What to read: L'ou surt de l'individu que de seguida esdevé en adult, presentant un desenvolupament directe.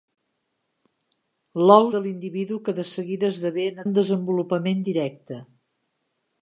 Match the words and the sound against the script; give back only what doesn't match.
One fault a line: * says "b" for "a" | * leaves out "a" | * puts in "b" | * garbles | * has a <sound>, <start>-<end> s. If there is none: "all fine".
* leaves out "surt"
* leaves out "adult presentant"